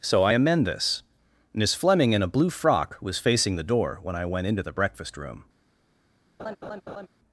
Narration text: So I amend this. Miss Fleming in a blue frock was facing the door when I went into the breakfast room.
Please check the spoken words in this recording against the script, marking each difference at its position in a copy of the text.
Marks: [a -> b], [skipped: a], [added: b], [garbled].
So I amend this. Miss Fleming in a blue frock was facing the door when I went into the breakfast room.